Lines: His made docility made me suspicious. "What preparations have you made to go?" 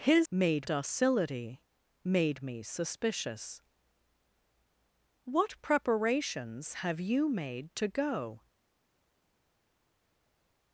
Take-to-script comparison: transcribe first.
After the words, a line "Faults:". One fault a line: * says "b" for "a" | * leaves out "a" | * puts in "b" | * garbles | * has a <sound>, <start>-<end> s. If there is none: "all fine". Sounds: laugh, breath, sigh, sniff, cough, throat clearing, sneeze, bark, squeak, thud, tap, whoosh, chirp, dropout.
His made docility made me suspicious. "What preparations have you made to go?"
Faults:
all fine